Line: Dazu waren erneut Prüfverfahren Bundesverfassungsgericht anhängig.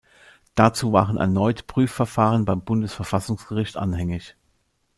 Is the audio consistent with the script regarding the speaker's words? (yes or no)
no